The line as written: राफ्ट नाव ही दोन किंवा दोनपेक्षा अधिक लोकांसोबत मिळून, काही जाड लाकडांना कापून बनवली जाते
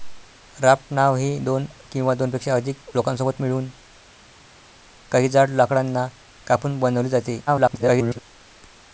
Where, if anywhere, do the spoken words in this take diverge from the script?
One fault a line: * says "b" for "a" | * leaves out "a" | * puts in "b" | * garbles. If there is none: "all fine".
* garbles